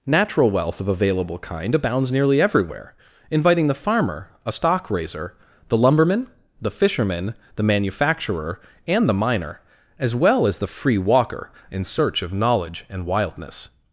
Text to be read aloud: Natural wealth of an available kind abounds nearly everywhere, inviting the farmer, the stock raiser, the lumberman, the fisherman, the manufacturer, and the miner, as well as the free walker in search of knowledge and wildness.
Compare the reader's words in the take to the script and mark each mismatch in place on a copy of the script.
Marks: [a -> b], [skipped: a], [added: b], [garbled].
Natural wealth of [skipped: an] available kind abounds nearly everywhere, inviting the farmer, [the -> a] stock raiser, the lumberman, the fisherman, the manufacturer, and the miner, as well as the free walker in search of knowledge and wildness.